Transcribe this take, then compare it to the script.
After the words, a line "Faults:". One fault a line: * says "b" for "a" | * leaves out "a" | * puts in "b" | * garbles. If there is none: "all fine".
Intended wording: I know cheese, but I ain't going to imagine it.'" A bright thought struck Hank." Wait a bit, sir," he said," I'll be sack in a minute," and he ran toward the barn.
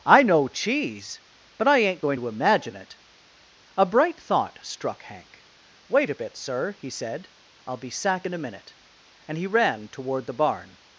I know cheese, but I ain't going to imagine it.'" A bright thought struck Hank." Wait a bit, sir," he said," I'll be sack in a minute," and he ran toward the barn.
Faults:
all fine